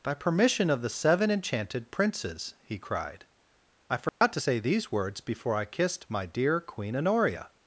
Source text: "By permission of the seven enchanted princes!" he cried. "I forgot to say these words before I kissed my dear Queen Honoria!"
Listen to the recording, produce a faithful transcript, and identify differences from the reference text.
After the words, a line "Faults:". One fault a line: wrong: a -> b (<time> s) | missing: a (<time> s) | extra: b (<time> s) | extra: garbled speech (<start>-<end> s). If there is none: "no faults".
"By permission of the seven enchanted princes!" he cried. "I forgot to say these words before I kissed my dear Queen Honoria!"
Faults:
no faults